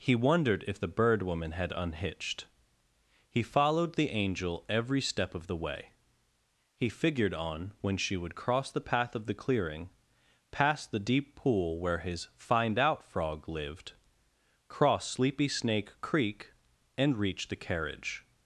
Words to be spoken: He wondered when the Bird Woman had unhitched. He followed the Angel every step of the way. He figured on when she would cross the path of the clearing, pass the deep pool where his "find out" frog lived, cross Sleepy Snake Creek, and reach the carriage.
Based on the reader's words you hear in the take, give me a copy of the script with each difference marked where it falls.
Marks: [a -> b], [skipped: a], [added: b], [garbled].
He wondered [when -> if] the Bird Woman had unhitched. He followed the Angel every step of the way. He figured on when she would cross the path of the clearing, pass the deep pool where his "find out" frog lived, cross Sleepy Snake Creek, and reach the carriage.